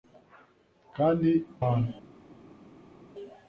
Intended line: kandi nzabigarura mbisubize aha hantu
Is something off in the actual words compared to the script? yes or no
yes